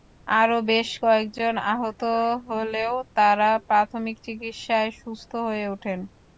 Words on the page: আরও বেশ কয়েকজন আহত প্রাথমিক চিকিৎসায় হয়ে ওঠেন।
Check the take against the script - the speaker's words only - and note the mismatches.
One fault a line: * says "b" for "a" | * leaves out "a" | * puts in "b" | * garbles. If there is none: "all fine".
* puts in "হলেও তাঁরা"
* puts in "সুস্থ"